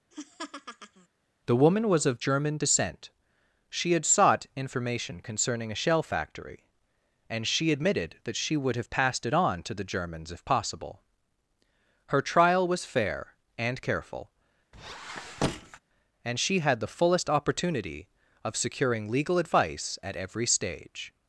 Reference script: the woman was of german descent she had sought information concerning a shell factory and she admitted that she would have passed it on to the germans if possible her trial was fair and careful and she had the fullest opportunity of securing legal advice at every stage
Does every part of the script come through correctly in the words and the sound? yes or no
no